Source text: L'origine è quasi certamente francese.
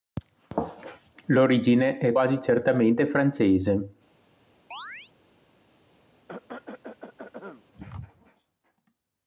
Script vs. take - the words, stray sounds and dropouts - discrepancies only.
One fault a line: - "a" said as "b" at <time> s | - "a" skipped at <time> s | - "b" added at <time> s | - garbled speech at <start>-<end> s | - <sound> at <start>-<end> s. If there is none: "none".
- chirp at 4.7-5.1 s
- cough at 6.3-7.6 s